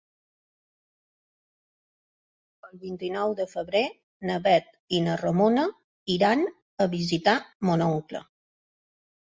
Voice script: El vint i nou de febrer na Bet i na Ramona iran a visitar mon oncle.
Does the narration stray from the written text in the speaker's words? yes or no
no